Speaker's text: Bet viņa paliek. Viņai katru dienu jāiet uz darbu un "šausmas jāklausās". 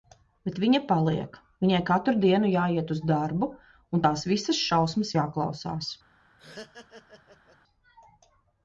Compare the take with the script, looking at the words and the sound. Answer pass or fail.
fail